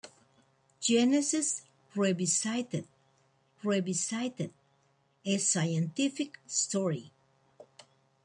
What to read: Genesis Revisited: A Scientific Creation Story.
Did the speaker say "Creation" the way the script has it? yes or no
no